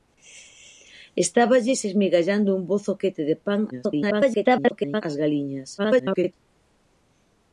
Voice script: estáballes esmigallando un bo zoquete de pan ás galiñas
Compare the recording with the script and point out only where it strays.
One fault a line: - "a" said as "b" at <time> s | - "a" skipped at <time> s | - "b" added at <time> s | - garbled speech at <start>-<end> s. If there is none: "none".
- garbled speech at 3.7-5.0 s
- garbled speech at 5.8-6.3 s